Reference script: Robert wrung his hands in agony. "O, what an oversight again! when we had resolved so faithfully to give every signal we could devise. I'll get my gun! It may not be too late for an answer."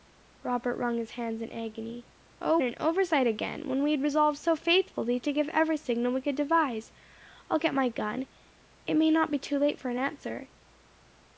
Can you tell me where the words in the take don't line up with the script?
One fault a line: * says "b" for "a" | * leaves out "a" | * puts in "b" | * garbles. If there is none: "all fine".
* leaves out "what"